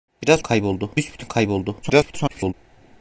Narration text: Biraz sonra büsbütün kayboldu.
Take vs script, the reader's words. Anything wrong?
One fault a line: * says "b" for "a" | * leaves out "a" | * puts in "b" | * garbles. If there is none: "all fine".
* says "kayboldu" for "sonra"
* garbles